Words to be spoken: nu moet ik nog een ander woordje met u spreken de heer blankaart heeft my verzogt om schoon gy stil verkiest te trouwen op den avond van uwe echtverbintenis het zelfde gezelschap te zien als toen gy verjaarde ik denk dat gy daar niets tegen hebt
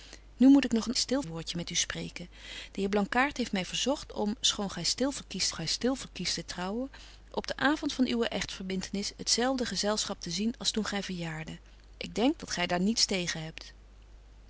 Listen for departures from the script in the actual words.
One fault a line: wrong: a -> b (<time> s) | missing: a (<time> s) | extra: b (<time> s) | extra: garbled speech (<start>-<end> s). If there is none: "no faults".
wrong: ander -> stil (0.9 s)
extra: gy stil verkiest (5.5 s)